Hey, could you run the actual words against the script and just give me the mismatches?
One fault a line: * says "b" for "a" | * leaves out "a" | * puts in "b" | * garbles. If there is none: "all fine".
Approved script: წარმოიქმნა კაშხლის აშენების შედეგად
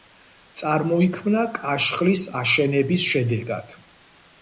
all fine